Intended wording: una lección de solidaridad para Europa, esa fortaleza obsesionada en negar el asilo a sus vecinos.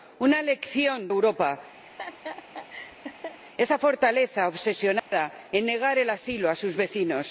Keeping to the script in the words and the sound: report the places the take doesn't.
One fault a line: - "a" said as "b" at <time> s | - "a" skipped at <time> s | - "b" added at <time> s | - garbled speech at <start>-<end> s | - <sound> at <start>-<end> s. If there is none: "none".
- "de solidaridad para" skipped at 1.1 s
- laugh at 1.9-3.4 s
- dropout at 5.0-5.1 s